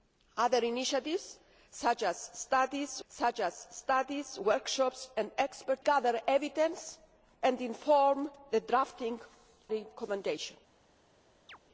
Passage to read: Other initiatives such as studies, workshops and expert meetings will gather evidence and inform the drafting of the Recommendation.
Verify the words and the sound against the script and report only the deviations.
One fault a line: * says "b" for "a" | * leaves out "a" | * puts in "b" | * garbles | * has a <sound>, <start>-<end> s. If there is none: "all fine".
* puts in "such as studies"
* leaves out "meetings will"
* leaves out "of the"
* has a chirp, 11.5-11.6 s